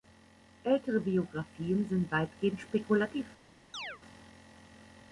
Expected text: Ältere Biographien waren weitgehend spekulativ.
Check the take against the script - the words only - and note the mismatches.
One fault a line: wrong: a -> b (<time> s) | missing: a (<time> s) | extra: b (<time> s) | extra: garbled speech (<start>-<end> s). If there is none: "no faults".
wrong: waren -> sind (1.9 s)